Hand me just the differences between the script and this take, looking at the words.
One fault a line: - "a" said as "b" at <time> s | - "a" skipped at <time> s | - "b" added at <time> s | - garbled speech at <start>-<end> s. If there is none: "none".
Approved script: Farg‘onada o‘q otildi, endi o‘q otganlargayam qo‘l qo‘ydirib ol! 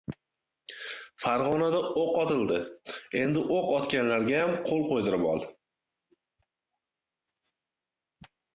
none